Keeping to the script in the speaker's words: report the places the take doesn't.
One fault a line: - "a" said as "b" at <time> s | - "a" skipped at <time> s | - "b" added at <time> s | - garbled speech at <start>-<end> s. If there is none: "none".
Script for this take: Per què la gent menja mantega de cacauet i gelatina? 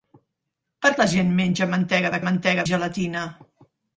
- "què" skipped at 0.9 s
- "cacauet" said as "mantega" at 2.3 s